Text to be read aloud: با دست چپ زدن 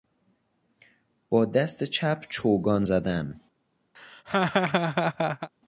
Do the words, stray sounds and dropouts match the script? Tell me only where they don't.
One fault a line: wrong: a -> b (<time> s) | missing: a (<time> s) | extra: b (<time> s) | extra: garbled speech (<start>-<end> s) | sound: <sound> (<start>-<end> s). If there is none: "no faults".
extra: چوگان (2.3 s)
sound: laugh (3.9-5.5 s)